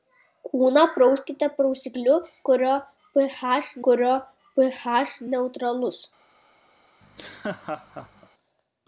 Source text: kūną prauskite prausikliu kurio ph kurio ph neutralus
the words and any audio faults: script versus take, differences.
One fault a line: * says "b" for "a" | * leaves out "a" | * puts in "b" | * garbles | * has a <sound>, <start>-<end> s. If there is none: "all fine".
* has a laugh, 7.0-8.3 s